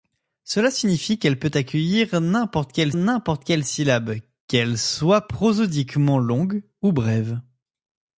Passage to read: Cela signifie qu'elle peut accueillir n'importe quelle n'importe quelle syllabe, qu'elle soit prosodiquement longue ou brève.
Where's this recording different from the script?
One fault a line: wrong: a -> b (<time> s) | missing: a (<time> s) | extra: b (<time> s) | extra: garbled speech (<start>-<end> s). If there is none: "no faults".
no faults